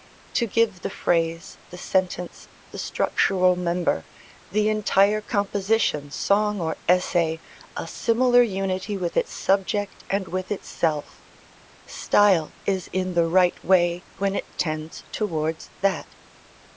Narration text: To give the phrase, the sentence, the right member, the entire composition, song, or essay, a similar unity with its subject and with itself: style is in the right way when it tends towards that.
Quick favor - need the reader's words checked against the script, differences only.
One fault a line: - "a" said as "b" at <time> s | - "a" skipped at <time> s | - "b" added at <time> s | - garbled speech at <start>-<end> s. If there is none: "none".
- "right" said as "structural" at 2.8 s